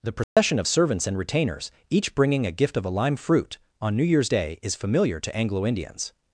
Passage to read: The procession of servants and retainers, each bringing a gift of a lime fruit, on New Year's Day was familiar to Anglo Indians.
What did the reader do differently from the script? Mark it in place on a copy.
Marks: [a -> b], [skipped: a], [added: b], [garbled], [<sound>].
The procession [dropout] of servants and retainers, each bringing a gift of a lime fruit, on New Year's Day [was -> is] familiar to Anglo Indians.